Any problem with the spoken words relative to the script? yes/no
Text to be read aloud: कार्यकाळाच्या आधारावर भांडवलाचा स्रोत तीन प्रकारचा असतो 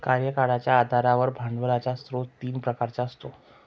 no